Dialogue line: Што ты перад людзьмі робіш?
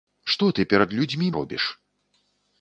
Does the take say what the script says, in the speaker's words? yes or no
yes